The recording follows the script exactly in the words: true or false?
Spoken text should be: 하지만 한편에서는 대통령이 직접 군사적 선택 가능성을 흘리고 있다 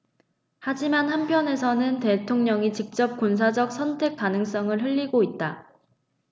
true